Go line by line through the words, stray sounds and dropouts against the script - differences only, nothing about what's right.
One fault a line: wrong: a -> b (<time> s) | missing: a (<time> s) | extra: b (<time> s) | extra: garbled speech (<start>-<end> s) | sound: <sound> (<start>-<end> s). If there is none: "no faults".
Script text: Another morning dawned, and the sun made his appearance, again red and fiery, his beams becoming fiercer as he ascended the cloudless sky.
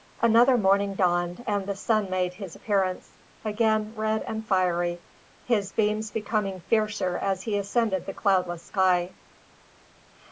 no faults